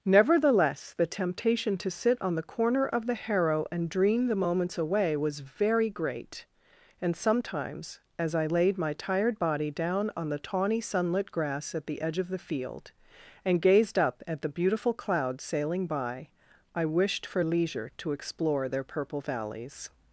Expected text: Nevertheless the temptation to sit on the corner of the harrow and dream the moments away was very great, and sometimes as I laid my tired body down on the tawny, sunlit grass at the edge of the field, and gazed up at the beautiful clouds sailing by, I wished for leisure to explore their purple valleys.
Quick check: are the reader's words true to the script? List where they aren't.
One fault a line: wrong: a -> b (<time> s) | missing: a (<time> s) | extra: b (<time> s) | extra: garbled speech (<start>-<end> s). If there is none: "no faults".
no faults